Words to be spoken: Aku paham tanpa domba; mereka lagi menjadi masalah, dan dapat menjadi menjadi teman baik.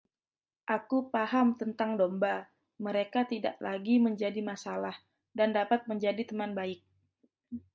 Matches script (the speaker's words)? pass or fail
fail